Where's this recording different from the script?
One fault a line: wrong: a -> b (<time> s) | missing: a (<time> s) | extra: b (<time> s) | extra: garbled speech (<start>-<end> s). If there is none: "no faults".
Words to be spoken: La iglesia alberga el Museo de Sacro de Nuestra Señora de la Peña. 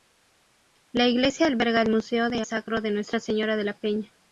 no faults